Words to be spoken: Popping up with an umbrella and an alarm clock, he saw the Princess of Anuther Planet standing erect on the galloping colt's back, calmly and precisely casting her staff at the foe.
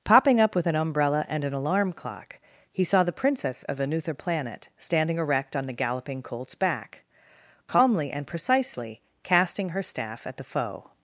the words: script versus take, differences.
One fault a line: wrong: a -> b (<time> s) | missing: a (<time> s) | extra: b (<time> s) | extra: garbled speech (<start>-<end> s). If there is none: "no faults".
no faults